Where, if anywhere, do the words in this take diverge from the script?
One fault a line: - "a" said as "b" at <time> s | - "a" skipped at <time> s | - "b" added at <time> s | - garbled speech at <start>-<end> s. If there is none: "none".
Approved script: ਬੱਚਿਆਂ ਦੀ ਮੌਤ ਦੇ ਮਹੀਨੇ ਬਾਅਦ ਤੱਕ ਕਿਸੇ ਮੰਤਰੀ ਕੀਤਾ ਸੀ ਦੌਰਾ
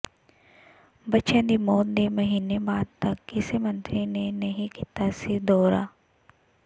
- "ਨੇ ਨਹੀਂ" added at 4.1 s